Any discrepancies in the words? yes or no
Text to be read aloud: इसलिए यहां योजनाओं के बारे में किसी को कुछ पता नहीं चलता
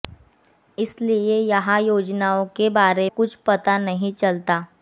yes